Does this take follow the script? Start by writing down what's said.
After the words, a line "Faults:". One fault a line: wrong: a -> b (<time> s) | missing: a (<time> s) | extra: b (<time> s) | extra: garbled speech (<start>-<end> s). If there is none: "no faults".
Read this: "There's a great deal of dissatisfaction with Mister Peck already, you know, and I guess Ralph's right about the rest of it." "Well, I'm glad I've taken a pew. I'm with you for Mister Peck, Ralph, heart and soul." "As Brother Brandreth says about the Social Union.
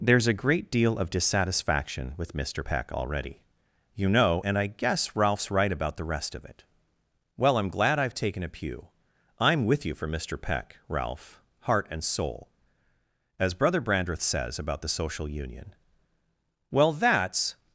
"There's a great deal of dissatisfaction with Mister Peck already, you know, and I guess Ralph's right about the rest of it." "Well, I'm glad I've taken a pew. I'm with you for Mister Peck, Ralph, heart and soul." "As Brother Brandreth says about the Social Union. Well, that's
Faults:
extra: Well that's (16.7 s)